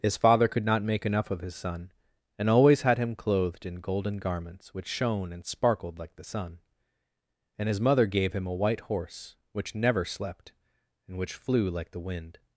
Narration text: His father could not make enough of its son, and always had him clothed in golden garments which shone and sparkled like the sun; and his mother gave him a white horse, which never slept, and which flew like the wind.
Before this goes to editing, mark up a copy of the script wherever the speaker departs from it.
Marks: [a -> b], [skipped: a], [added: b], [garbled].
His father could not make enough of [its -> his] son, and always had him clothed in golden garments which shone and sparkled like the sun; and his mother gave him a white horse, which never slept, and which flew like the wind.